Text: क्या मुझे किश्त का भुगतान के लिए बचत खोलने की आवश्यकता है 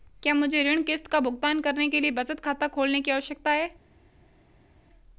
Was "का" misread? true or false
false